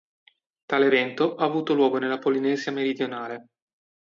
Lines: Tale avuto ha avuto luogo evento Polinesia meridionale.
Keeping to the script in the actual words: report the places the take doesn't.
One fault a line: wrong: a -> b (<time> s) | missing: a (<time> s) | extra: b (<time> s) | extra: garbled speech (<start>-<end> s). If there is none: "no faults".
wrong: avuto -> evento (0.8 s)
wrong: evento -> nella (2.0 s)